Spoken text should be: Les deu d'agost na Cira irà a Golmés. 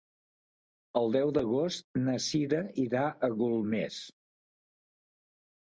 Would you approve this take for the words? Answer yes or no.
no